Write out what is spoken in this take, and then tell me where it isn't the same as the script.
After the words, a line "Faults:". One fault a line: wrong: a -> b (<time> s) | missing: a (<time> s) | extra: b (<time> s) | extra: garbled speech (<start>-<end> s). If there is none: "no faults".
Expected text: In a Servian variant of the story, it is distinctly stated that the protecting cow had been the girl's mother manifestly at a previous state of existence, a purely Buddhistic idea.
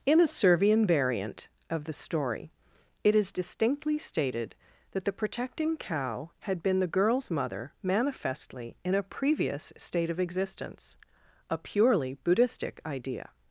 In a Servian variant of the story, it is distinctly stated that the protecting cow had been the girl's mother manifestly in a previous state of existence, a purely Buddhistic idea.
Faults:
wrong: at -> in (8.8 s)